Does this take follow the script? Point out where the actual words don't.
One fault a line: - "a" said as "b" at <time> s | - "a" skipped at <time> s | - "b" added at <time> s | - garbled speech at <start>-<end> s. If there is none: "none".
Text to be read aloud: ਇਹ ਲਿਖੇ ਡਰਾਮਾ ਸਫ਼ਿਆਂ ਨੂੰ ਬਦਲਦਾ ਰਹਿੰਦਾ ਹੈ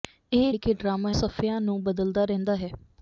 none